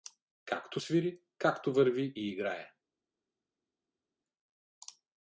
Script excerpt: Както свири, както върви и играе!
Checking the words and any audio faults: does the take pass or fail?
pass